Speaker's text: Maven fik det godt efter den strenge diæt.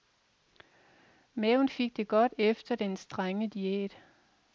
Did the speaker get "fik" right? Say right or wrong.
right